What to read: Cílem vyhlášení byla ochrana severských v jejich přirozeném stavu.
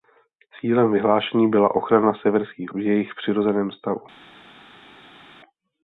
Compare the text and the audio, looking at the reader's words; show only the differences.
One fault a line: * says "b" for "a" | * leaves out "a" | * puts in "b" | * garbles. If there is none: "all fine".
all fine